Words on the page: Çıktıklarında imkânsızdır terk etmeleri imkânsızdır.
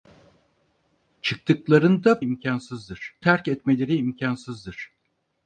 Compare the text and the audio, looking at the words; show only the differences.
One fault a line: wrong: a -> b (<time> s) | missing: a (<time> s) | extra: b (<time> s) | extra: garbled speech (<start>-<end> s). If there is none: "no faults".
no faults